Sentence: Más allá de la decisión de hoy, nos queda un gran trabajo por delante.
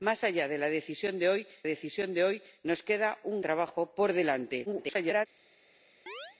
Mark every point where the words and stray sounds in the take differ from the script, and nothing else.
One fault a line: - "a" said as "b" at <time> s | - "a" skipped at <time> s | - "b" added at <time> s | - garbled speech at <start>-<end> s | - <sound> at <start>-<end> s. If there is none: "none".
- "decisión de hoy" added at 1.6 s
- "gran" skipped at 3.4 s
- garbled speech at 4.7-5.3 s
- chirp at 6.1-6.4 s